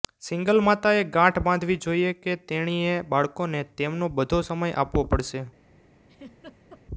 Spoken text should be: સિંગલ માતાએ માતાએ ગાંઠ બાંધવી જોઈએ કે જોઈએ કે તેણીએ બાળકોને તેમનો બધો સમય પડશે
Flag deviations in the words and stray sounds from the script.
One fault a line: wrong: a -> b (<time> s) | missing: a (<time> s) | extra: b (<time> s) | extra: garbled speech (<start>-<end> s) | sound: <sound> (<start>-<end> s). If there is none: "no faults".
missing: માતાએ (1.0 s)
missing: જોઈએ કે (2.4 s)
extra: આપવો (4.8 s)
sound: laugh (6.1-6.8 s)